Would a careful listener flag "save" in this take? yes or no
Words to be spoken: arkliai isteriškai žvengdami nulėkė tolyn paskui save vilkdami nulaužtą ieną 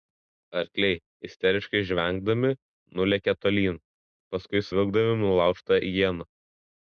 yes